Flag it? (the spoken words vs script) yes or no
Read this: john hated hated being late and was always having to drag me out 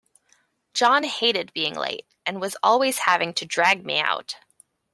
yes